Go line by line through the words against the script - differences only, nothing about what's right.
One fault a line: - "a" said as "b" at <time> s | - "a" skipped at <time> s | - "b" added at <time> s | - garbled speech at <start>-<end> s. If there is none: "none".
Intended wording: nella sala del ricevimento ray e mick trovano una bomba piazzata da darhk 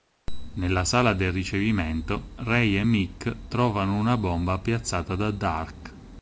none